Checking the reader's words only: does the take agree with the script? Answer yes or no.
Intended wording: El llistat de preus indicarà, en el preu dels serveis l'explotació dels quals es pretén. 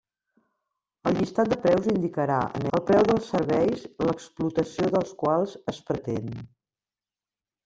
yes